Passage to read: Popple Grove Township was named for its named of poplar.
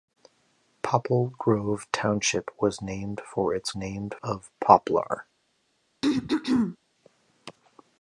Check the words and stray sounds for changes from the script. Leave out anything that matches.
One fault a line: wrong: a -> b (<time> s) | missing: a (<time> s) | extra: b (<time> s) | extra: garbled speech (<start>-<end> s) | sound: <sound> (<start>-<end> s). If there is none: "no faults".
sound: throat clearing (6.0-6.8 s)